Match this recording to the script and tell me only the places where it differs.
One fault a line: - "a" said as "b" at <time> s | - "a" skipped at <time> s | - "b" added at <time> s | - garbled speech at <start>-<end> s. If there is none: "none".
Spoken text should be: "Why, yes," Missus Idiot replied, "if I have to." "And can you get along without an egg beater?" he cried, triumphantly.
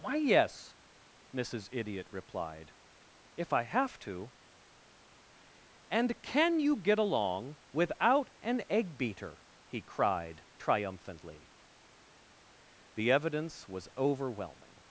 - "The evidence was overwhelming" added at 12.9 s